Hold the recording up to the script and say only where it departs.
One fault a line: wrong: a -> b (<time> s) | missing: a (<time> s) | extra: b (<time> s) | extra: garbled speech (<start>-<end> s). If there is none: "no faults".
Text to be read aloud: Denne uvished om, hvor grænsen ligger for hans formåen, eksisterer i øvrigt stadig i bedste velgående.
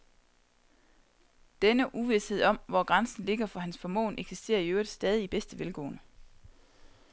no faults